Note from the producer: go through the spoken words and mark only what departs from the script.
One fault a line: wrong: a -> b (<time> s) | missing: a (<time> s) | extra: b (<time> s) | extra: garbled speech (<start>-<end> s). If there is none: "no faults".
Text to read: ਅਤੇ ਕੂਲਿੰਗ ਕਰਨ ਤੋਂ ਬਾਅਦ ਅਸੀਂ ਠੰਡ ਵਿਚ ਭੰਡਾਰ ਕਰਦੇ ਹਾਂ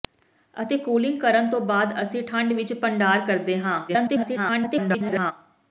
extra: garbled speech (3.9-5.3 s)